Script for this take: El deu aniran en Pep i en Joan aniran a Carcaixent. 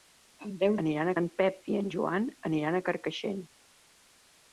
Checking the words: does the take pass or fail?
pass